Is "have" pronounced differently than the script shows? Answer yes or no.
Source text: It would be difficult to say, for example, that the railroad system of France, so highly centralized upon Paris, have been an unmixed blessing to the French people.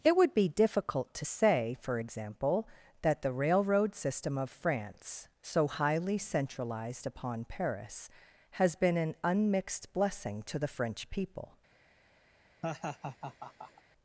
yes